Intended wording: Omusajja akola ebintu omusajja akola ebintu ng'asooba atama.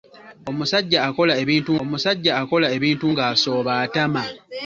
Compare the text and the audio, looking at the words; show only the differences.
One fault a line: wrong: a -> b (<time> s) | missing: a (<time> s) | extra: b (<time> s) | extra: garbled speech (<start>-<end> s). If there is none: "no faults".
no faults